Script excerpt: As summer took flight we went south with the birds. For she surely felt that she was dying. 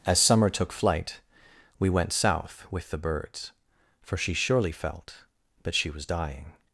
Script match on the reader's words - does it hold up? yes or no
yes